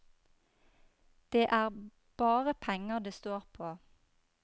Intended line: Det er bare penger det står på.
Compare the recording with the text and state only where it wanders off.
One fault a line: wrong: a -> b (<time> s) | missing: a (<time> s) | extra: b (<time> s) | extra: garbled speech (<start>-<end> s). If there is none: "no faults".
no faults